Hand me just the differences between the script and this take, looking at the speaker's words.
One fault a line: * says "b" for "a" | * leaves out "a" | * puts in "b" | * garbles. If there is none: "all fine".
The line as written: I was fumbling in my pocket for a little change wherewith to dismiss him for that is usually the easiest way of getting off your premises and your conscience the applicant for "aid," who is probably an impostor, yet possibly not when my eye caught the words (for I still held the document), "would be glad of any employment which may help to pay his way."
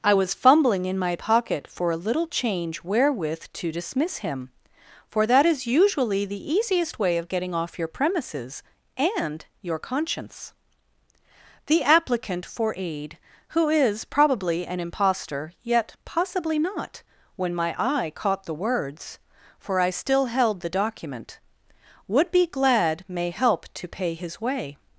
* leaves out "of any employment which"